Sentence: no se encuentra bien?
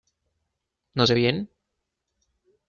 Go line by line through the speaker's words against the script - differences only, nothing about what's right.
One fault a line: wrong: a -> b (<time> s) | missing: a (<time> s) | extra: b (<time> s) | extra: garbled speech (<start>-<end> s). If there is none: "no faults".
missing: encuentra (1.1 s)